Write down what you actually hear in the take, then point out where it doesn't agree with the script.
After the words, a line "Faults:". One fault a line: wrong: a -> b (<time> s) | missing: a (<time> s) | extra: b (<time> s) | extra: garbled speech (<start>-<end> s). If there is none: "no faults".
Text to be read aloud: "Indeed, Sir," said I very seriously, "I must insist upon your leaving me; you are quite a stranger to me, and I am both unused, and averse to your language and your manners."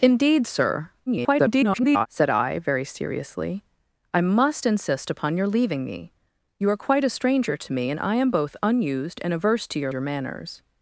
"Indeed, Sir," [garbled] said I very seriously, "I must insist upon your leaving me; you are quite a stranger to me, and I am both unused, and averse to your your manners."
Faults:
extra: garbled speech (1.1-2.1 s)
missing: language and (9.9 s)